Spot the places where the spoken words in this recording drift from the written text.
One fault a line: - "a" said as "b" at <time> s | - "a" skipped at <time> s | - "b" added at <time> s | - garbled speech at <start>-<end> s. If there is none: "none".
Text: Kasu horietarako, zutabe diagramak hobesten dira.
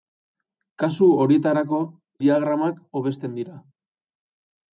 - "zutabe" skipped at 1.8 s